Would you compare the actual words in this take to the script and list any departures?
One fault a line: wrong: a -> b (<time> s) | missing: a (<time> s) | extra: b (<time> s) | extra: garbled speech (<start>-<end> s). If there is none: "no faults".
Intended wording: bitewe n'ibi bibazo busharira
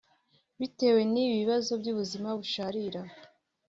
extra: by'ubuzima (1.8 s)